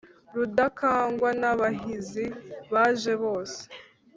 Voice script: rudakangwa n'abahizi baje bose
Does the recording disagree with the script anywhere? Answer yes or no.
no